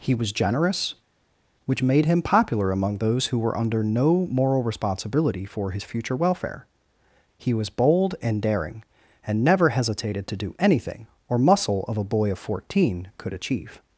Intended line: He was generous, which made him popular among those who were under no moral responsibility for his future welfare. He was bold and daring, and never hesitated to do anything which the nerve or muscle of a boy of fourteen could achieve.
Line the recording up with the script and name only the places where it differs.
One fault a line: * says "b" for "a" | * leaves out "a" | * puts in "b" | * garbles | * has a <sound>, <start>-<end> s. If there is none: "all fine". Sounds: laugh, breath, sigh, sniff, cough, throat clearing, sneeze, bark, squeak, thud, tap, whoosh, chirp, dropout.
* leaves out "which the nerve"